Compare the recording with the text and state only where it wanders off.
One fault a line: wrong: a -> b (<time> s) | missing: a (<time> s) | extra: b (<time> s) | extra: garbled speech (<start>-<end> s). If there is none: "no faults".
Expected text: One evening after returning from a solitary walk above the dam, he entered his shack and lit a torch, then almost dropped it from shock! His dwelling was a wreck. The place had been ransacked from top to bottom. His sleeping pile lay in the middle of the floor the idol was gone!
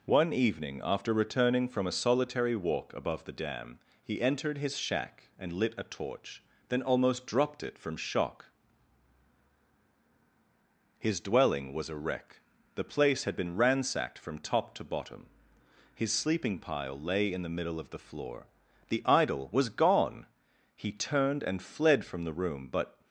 extra: He turned and fled from the room but (20.8 s)